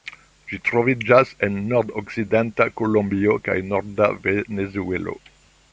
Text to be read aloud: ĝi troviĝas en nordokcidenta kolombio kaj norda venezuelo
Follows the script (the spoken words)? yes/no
yes